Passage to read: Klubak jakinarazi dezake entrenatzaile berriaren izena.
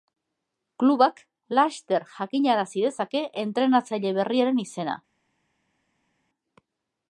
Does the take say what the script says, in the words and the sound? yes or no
no